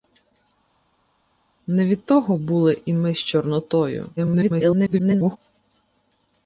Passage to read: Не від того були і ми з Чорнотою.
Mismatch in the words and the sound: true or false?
true